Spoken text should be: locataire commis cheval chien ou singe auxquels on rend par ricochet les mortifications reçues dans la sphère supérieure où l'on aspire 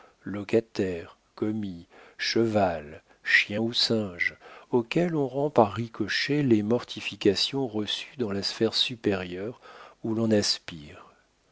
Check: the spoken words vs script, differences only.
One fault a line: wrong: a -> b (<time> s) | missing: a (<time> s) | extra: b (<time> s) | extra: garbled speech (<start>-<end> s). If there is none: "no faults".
no faults